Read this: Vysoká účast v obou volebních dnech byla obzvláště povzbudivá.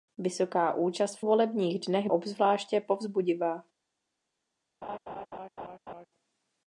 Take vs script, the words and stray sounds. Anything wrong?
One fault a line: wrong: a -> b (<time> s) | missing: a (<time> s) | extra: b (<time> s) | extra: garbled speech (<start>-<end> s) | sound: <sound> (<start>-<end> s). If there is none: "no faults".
missing: obou (1.2 s)
missing: byla (2.1 s)
sound: laugh (4.8-6.1 s)